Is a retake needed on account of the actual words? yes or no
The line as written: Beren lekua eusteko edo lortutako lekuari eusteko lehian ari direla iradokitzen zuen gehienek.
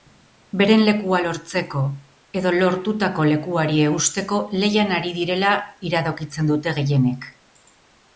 yes